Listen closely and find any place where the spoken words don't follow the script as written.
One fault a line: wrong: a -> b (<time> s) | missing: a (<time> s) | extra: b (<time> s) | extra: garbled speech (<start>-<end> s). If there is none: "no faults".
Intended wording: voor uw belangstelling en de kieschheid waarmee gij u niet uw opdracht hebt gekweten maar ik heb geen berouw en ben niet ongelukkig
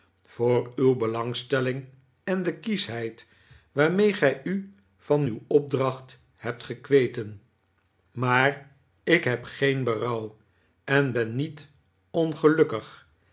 wrong: niet -> van (5.0 s)